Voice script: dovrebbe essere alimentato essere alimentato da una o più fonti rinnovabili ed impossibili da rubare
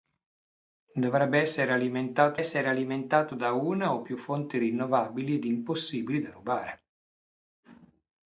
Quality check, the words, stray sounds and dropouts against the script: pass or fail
pass